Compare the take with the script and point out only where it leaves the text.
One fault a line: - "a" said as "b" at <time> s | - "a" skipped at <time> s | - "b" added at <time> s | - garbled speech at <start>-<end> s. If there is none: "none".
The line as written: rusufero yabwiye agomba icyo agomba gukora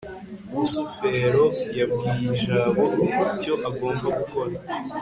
- "agomba" said as "jabo" at 2.4 s